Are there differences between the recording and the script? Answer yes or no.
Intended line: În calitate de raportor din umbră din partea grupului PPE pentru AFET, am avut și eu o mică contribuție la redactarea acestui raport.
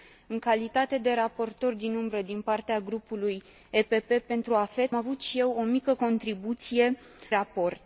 yes